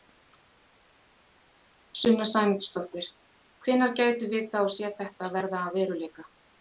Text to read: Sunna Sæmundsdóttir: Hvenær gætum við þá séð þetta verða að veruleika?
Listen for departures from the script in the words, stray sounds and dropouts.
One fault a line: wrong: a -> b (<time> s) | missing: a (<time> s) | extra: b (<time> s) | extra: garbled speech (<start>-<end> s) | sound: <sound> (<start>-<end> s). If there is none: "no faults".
no faults